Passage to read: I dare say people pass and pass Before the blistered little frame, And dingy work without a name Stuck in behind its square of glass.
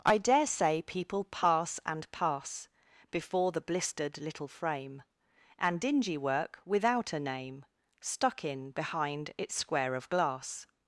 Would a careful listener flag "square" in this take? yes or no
no